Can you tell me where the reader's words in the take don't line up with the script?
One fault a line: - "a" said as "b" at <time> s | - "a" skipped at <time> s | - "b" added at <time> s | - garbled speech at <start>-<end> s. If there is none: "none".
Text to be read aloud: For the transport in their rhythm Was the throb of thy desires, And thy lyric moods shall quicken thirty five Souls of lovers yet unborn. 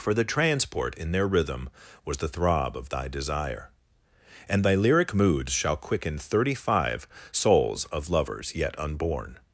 - "desires" said as "desire" at 3.1 s